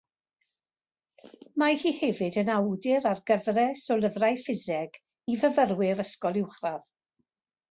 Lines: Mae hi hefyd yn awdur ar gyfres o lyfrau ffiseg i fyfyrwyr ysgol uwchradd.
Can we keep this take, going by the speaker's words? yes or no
yes